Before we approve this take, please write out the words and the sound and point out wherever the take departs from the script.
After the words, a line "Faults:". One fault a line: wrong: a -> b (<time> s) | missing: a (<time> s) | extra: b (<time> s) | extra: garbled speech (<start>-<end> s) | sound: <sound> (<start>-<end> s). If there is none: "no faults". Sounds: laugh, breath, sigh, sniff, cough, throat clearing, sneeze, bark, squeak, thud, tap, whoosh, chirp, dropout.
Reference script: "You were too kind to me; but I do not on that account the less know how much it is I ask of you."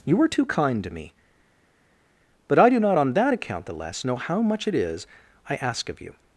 "You were too kind to me; but I do not on that account the less know how much it is I ask of you."
Faults:
no faults